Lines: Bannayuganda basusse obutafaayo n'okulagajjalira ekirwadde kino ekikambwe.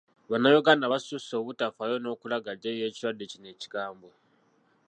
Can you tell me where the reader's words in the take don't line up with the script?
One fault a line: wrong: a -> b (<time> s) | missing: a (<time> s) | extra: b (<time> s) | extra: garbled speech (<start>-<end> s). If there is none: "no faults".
no faults